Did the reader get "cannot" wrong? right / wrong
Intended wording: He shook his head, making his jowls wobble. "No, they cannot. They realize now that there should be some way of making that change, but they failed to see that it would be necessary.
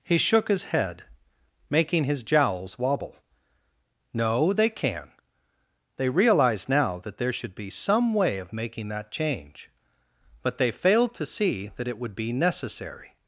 wrong